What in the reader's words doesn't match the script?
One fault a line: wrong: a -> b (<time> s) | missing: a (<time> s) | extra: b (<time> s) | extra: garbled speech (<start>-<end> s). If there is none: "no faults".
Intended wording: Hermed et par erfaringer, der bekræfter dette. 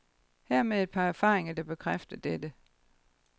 no faults